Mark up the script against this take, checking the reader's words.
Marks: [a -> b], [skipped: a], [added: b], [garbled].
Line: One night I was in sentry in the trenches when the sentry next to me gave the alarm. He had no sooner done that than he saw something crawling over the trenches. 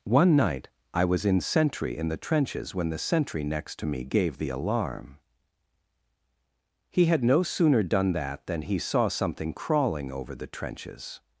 One night I was in sentry in the trenches when the sentry next to me gave the alarm. He had no sooner done that than he saw something crawling over the trenches.